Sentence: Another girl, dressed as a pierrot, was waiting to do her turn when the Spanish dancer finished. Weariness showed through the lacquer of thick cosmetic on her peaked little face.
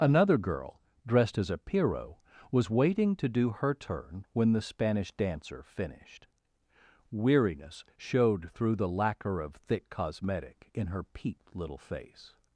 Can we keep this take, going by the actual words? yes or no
no